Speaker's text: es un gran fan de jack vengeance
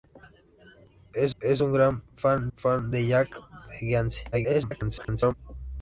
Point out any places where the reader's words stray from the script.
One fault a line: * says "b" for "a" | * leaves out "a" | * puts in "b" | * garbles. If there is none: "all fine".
* puts in "es"
* puts in "fan"
* garbles